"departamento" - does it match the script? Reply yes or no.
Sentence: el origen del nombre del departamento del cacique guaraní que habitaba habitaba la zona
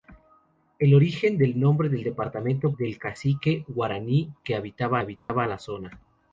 yes